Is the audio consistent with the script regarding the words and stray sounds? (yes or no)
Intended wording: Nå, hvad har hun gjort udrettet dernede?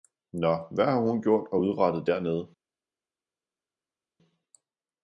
no